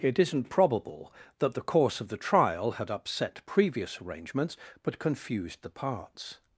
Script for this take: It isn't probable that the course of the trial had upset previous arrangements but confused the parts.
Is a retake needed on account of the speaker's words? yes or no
no